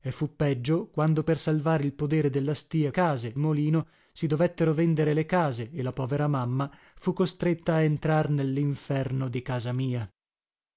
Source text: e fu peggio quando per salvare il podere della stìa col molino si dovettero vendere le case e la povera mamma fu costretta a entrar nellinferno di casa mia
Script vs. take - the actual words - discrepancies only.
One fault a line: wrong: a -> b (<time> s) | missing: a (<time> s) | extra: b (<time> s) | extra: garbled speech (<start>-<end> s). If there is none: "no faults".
wrong: col -> case (2.9 s)